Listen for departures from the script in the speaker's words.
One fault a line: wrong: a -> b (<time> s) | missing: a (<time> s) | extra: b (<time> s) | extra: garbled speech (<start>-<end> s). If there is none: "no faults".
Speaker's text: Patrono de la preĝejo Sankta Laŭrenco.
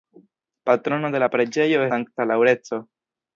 no faults